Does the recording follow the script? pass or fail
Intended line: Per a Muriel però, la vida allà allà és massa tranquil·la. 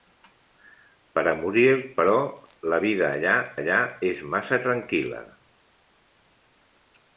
pass